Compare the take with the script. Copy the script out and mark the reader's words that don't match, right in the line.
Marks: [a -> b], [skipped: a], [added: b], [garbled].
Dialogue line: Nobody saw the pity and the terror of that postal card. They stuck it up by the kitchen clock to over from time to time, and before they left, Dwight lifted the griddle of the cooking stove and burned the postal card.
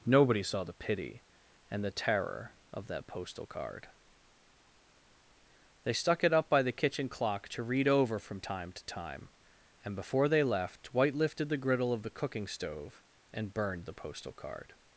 Nobody saw the pity and the terror of that postal card. They stuck it up by the kitchen clock to [added: read] over from time to time, and before they left, Dwight lifted the griddle of the cooking stove and burned the postal card.